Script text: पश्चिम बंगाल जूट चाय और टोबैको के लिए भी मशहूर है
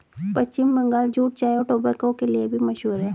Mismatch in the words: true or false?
false